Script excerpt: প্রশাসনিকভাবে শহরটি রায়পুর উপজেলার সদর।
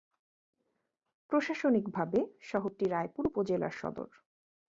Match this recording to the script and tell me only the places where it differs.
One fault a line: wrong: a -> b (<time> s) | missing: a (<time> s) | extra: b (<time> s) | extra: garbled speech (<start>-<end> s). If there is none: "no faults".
no faults